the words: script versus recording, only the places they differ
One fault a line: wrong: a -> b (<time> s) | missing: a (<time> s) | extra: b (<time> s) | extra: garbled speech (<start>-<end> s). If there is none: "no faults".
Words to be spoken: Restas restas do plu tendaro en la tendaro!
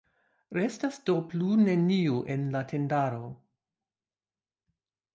missing: restas (1.0 s)
wrong: tendaro -> neniu (1.6 s)